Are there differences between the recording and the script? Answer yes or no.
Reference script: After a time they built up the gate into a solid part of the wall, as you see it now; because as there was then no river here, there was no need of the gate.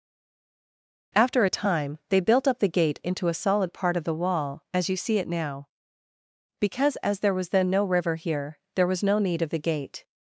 no